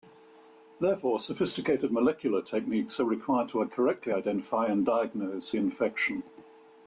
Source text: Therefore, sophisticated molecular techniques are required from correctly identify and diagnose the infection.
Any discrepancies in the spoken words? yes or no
yes